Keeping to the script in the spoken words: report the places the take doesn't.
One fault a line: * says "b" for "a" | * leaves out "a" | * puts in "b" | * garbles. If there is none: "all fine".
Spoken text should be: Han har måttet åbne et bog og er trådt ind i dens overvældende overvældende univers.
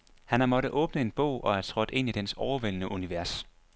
* says "en" for "et"
* leaves out "overvældende"